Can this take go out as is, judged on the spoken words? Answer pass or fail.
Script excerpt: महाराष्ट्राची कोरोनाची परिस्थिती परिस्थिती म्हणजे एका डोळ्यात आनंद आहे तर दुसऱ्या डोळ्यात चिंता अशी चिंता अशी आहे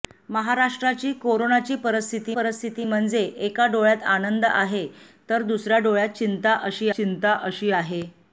pass